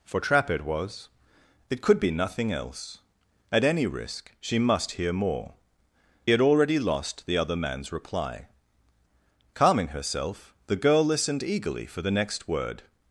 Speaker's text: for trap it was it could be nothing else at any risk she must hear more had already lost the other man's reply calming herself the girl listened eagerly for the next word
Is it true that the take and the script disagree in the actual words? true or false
false